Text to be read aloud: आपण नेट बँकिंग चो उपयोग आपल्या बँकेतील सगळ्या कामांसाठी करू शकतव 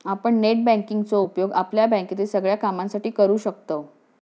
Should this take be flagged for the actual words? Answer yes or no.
no